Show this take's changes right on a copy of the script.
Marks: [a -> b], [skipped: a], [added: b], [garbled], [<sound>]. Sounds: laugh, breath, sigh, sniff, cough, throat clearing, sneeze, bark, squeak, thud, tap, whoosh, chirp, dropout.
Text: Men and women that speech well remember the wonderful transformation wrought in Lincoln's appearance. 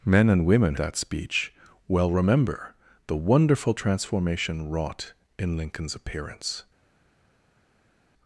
Men and women that speech well remember the wonderful transformation wrought in Lincoln's appearance.